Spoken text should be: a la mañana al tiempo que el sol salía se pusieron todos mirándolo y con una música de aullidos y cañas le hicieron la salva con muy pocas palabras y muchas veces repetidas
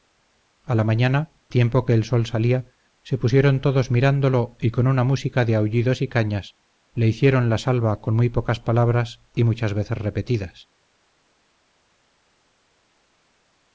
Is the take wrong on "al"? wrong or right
wrong